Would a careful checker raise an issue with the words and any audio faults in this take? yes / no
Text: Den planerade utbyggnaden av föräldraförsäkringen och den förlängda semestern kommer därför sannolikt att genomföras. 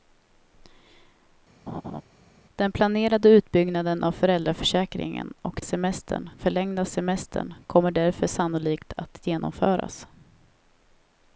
yes